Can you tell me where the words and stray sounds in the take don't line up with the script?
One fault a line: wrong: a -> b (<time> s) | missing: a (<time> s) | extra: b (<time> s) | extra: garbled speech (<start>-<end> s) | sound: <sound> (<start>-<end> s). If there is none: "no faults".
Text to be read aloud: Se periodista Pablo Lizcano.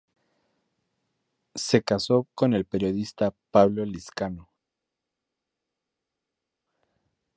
extra: casó con el (1.8 s)